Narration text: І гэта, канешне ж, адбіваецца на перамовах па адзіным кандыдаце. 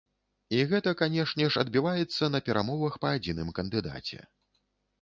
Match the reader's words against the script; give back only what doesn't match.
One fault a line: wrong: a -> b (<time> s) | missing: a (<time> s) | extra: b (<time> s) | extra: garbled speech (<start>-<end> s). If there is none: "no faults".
no faults